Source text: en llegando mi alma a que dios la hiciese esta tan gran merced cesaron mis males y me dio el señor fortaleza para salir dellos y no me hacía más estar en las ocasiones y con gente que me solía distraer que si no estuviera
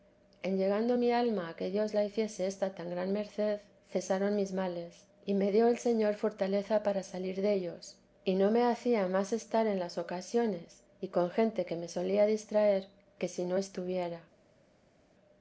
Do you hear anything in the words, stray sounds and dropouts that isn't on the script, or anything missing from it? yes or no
no